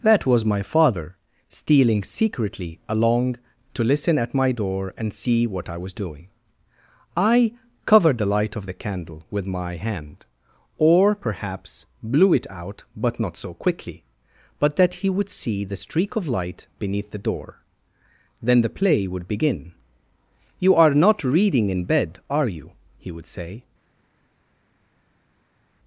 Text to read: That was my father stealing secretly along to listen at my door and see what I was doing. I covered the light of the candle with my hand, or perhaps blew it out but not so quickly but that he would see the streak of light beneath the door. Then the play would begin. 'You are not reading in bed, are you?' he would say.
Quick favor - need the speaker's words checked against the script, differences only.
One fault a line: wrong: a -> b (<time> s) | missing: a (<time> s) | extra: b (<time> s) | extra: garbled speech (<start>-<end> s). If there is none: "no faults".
no faults